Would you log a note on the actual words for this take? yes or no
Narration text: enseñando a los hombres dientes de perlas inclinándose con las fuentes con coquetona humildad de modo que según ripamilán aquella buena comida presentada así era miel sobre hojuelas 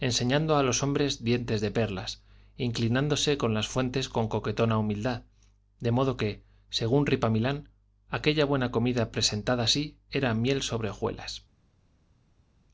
no